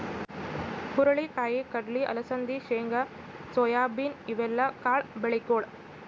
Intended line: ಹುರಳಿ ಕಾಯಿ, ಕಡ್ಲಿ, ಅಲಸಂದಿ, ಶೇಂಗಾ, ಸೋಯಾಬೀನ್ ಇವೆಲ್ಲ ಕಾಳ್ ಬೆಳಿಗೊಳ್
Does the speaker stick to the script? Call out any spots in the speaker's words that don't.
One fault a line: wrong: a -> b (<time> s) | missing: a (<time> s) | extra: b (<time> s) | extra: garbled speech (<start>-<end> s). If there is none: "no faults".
no faults